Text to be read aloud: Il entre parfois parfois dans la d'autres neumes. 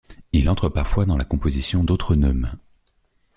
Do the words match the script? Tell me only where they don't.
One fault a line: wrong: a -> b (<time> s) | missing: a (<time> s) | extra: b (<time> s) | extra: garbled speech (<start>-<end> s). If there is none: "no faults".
missing: parfois (1.1 s)
extra: composition (1.2 s)